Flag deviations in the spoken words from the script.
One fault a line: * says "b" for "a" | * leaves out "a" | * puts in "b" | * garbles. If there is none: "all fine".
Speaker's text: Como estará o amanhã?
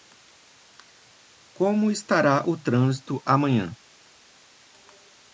* puts in "trânsito"